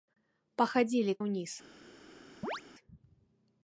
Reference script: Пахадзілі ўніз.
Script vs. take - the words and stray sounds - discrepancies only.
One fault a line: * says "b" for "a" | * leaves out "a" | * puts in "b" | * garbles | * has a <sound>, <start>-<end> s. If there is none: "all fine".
* has a chirp, 2.4-2.6 s